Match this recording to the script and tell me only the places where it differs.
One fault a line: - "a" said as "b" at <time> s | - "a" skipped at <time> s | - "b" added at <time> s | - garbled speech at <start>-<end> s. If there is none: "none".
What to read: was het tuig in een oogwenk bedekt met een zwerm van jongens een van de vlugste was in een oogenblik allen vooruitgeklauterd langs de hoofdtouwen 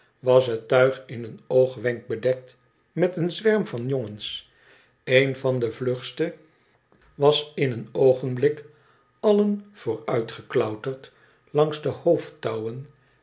none